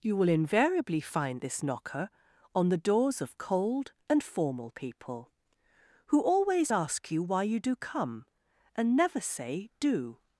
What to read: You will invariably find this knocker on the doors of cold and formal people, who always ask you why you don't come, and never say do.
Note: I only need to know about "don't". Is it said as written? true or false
false